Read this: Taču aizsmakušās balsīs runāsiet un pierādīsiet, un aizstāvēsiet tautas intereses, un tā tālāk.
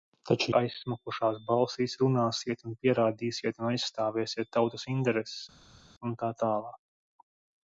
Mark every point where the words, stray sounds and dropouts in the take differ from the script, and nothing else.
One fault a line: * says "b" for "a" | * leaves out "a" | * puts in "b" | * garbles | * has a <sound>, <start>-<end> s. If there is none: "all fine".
all fine